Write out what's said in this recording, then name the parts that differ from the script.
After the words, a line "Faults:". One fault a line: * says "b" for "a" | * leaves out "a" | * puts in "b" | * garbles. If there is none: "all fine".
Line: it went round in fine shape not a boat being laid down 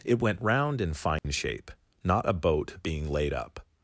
it went round in fine shape not a boat being laid up
Faults:
* says "up" for "down"